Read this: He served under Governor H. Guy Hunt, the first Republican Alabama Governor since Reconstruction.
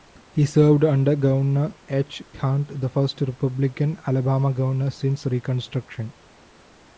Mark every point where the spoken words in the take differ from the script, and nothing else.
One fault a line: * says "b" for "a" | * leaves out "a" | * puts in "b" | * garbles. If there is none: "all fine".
* leaves out "Guy"